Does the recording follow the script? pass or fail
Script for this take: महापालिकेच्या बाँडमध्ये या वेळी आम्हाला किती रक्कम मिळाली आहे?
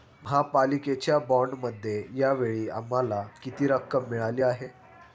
pass